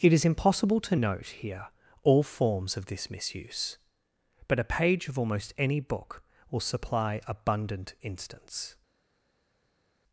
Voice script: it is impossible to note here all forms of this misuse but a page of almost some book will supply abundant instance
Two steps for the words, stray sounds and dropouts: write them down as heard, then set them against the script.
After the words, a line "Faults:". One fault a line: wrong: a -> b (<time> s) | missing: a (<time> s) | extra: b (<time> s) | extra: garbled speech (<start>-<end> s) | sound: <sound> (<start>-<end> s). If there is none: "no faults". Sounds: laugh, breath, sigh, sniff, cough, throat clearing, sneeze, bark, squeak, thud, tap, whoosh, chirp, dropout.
it is impossible to note here all forms of this misuse but a page of almost any book will supply abundant instance
Faults:
wrong: some -> any (5.6 s)